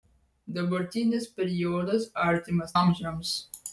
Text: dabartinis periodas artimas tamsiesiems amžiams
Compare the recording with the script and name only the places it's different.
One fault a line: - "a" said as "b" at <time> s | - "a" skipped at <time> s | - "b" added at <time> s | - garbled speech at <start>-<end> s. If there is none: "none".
- "tamsiesiems" skipped at 2.7 s